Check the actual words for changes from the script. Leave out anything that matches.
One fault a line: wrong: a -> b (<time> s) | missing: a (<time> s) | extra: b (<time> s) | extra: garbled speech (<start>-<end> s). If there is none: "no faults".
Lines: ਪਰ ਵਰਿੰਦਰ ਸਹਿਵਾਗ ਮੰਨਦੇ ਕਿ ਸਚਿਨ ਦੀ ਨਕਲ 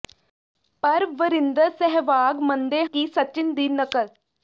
no faults